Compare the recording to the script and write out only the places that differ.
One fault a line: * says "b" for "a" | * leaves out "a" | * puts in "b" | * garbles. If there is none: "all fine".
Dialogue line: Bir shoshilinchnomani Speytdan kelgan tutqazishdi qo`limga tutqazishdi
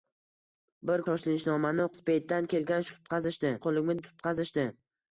all fine